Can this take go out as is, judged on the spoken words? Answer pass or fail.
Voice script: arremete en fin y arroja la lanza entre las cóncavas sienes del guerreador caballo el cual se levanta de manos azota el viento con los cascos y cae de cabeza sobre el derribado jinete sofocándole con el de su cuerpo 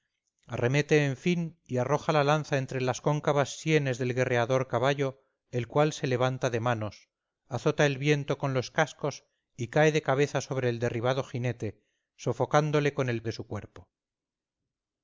pass